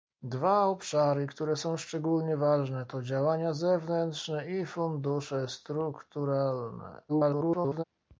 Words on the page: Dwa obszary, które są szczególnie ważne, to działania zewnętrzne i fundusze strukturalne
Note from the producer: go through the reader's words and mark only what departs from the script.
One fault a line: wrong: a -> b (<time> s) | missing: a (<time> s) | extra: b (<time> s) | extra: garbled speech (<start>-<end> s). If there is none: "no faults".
extra: garbled speech (7.1-7.8 s)